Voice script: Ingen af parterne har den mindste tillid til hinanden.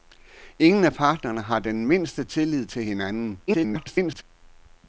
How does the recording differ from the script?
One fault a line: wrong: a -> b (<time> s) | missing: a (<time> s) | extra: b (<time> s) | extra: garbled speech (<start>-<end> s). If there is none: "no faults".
extra: garbled speech (3.5-4.2 s)